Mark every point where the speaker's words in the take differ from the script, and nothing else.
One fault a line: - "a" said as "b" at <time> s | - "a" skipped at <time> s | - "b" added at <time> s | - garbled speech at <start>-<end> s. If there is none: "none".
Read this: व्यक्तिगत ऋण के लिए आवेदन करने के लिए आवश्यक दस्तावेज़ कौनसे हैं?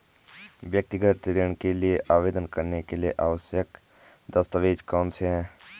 none